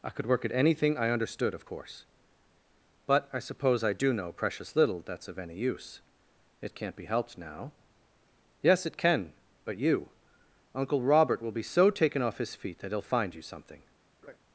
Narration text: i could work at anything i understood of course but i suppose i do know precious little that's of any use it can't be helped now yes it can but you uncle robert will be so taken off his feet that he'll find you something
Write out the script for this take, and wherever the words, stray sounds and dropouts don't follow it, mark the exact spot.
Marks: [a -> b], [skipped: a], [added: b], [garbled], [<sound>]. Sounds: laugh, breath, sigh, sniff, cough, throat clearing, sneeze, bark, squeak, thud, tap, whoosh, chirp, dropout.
i could work at anything i understood of course but i suppose i do know precious little that's of any use it can't be helped now yes it can but you uncle robert will be so taken off his feet that he'll find you something [laugh]